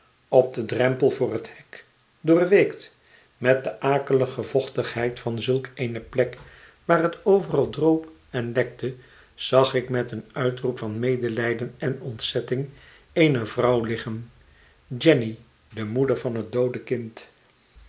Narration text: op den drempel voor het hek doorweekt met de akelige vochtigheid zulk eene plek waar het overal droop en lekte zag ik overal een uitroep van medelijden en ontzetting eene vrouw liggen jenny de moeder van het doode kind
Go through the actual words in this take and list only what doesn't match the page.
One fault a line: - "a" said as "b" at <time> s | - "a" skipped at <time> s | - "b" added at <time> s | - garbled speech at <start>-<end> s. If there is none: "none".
- "van" added at 5.2 s
- "overal" said as "met" at 9.9 s